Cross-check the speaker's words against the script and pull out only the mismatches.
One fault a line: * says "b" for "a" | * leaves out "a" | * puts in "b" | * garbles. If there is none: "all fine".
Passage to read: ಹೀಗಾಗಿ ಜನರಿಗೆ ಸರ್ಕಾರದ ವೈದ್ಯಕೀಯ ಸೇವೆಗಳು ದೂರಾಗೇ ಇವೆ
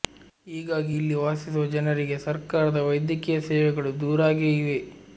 * puts in "ಇಲ್ಲಿ ವಾಸಿಸುವ"